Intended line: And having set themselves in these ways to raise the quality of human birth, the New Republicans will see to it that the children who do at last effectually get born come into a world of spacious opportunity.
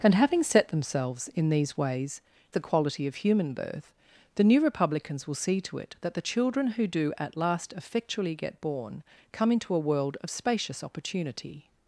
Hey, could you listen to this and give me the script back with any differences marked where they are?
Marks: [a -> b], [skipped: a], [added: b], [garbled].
And having set themselves in these ways [skipped: to raise] the quality of human birth, the New Republicans will see to it that the children who do at last effectually get born come into a world of spacious opportunity.